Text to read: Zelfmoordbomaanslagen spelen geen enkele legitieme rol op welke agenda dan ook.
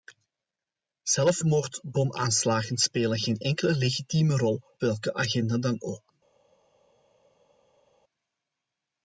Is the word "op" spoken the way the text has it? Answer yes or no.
no